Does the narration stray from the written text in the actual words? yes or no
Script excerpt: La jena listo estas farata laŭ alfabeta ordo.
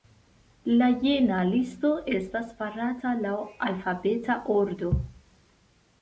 no